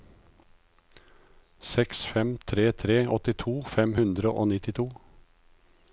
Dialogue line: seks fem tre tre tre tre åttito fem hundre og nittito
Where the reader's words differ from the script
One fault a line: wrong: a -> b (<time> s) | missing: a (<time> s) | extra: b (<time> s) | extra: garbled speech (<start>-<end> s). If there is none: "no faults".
missing: tre tre (3.0 s)